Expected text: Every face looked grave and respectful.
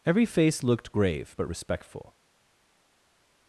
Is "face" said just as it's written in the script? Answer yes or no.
yes